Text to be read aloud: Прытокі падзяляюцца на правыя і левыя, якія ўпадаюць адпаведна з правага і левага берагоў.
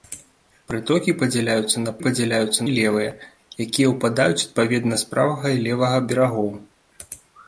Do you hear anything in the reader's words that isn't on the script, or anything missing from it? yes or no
yes